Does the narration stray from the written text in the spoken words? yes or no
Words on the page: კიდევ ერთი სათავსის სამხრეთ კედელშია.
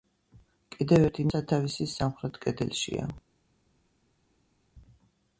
no